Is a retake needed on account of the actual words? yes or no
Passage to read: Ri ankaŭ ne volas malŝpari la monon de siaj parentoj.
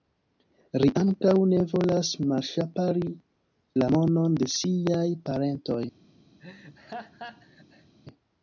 no